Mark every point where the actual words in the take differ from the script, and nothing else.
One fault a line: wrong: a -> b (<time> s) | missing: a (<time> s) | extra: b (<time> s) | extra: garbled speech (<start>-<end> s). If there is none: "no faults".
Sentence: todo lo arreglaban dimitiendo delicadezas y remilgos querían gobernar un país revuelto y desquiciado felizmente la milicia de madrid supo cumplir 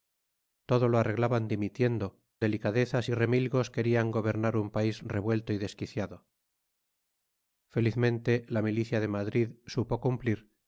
no faults